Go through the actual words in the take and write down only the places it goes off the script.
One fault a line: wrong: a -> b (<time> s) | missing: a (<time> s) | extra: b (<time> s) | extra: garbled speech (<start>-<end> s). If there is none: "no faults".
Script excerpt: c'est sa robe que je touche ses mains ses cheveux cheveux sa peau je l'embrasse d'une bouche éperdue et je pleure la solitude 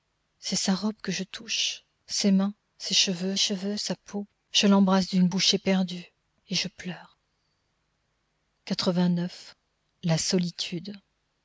no faults